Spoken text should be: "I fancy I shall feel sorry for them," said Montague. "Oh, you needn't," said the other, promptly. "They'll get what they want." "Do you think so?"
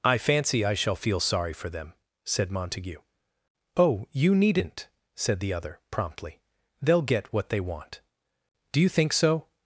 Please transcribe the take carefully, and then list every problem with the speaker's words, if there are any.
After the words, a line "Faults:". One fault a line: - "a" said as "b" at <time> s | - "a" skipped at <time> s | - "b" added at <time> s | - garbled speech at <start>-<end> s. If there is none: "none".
"I fancy I shall feel sorry for them," said Montague. "Oh, you needn't," said the other, promptly. "They'll get what they want." "Do you think so?"
Faults:
none